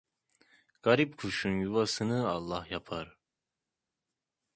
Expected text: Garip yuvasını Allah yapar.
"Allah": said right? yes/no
yes